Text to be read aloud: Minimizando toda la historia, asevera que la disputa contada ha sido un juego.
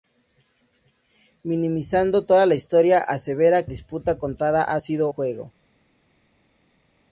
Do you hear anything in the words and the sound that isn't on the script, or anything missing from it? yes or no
yes